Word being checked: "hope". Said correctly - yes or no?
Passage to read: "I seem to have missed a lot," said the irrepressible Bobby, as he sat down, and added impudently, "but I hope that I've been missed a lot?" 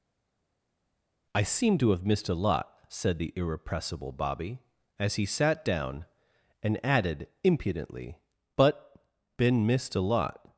no